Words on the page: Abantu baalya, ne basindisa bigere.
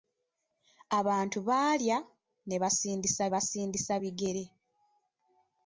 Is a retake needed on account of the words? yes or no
yes